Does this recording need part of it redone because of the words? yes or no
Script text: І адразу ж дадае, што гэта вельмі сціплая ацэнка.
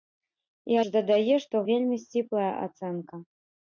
yes